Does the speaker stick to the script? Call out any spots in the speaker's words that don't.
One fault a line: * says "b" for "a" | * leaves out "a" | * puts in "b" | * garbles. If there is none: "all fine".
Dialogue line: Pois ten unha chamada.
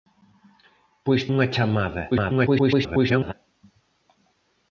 * leaves out "ten"
* garbles